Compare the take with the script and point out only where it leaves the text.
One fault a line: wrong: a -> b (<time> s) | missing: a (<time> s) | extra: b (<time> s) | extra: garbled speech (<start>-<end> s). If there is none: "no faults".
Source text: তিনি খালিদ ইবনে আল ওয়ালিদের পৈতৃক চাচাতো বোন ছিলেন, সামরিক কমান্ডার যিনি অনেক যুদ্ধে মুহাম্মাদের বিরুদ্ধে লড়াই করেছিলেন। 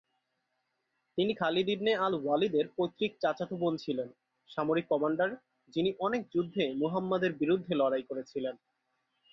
no faults